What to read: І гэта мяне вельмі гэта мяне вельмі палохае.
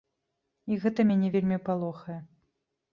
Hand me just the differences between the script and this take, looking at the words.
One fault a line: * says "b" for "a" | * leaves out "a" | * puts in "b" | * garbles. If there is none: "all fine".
* leaves out "гэта мяне вельмі"